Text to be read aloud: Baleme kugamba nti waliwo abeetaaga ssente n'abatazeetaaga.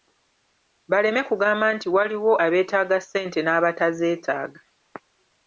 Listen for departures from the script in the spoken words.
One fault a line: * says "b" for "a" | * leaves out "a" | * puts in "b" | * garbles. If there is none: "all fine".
all fine